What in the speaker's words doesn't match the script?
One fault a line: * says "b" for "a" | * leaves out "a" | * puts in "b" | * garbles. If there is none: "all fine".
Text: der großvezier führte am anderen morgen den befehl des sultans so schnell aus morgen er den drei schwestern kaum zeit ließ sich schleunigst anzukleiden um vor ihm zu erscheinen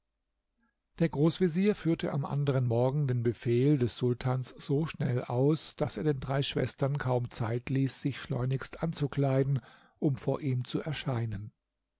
* says "daß" for "morgen"